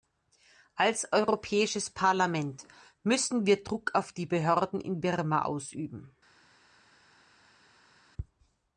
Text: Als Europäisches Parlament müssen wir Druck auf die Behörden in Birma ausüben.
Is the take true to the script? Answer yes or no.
yes